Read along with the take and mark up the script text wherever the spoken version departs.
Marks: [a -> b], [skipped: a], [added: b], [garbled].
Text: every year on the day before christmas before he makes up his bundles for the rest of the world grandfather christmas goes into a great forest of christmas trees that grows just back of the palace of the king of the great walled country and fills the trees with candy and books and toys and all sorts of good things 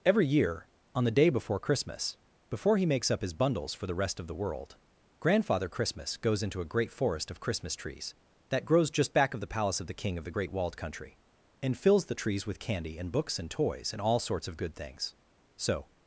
every year on the day before christmas before he makes up his bundles for the rest of the world grandfather christmas goes into a great forest of christmas trees that grows just back of the palace of the king of the great walled country and fills the trees with candy and books and toys and all sorts of good things [added: so]